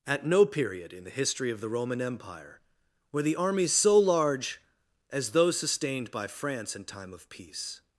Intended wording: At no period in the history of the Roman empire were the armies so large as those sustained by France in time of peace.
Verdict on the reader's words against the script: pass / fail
pass